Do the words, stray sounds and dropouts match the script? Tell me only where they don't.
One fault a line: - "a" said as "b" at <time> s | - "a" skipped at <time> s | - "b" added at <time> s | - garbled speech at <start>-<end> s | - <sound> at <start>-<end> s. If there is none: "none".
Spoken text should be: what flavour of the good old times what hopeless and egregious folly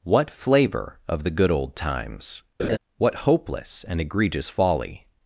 - laugh at 2.6-2.8 s